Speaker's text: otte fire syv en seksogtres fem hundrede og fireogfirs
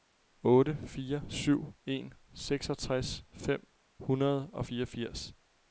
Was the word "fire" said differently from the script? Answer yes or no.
no